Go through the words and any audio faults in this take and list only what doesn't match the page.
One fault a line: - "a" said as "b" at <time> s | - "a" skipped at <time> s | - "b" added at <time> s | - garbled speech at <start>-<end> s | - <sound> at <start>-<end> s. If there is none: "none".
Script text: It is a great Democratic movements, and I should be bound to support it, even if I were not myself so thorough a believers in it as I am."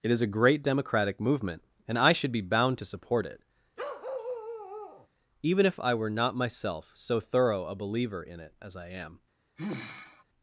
- "movements" said as "movement" at 1.2 s
- bark at 3.8-5.1 s
- "believers" said as "believer" at 7.8 s
- sigh at 9.6-10.2 s